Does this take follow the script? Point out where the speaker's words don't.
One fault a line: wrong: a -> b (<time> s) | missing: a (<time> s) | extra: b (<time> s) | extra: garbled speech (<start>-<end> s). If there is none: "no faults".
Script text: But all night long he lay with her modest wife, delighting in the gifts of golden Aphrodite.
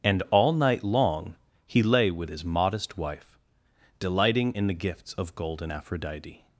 wrong: But -> And (0.0 s)
wrong: her -> his (2.3 s)